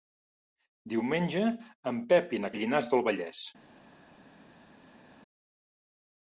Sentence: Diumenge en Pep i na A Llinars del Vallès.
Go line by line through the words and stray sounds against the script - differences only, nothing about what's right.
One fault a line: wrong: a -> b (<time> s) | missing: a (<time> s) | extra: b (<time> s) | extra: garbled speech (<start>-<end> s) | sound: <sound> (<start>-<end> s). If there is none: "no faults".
no faults